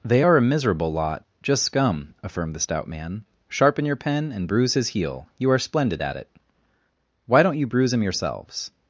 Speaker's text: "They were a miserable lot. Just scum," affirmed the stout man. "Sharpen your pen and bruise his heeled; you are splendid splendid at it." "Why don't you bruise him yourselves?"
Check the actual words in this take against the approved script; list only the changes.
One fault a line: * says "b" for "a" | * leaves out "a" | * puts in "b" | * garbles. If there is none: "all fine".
* says "are" for "were"
* says "heel" for "heeled"
* leaves out "splendid"